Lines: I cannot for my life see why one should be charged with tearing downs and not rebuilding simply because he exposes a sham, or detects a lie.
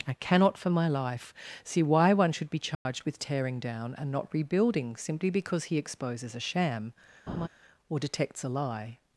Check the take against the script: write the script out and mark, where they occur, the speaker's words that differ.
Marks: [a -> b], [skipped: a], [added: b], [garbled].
I cannot for my life see why one should be charged with tearing [downs -> down] and not rebuilding simply because he exposes a sham, or detects a lie.